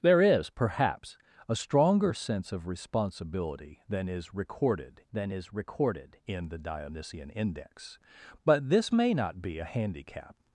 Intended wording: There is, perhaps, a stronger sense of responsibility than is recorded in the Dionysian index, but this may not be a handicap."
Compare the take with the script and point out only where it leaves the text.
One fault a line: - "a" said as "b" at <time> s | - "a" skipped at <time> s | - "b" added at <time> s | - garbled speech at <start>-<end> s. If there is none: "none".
- "than is recorded" added at 5.1 s